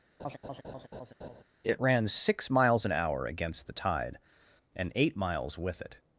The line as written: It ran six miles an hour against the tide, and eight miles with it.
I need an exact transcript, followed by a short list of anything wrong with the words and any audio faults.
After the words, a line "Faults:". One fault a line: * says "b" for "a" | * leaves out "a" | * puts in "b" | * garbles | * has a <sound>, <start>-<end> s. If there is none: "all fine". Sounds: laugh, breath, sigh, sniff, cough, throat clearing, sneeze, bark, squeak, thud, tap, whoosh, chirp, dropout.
It ran six miles an hour against the tide, and eight miles with it.
Faults:
* has a laugh, 0.2-1.4 s